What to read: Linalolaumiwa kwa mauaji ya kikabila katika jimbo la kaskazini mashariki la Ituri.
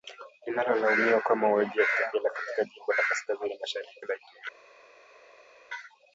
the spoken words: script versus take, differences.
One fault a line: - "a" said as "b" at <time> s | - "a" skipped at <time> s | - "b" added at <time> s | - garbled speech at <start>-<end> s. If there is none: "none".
none